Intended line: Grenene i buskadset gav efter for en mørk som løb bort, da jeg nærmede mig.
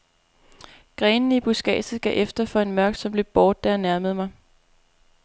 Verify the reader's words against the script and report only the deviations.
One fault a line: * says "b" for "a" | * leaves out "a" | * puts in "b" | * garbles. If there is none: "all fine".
all fine